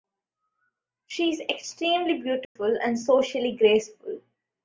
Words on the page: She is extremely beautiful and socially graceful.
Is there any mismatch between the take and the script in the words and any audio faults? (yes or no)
yes